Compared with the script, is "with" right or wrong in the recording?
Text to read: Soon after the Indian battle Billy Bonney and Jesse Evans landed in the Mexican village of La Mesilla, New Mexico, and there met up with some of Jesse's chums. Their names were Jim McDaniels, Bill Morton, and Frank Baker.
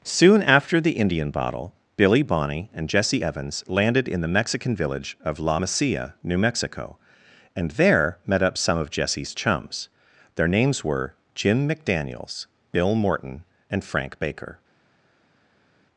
wrong